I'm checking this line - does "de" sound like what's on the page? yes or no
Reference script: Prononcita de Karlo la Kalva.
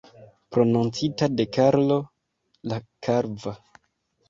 yes